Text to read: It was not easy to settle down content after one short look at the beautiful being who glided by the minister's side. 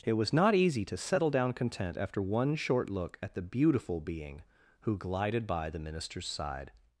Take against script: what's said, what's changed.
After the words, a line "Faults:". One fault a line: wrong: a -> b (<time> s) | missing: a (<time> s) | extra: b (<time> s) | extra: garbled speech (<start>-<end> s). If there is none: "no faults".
It was not easy to settle down content after one short look at the beautiful being who glided by the minister's side.
Faults:
no faults